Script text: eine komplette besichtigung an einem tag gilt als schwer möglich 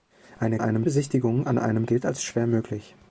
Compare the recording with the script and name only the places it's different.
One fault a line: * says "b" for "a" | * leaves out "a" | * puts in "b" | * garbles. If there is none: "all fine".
* says "einem" for "komplette"
* leaves out "tag"